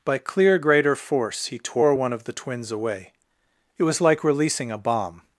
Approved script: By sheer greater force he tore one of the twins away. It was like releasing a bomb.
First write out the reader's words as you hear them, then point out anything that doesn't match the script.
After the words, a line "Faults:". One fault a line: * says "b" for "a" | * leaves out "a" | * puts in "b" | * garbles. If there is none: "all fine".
By clear greater force he tore one of the twins away. It was like releasing a bomb.
Faults:
* says "clear" for "sheer"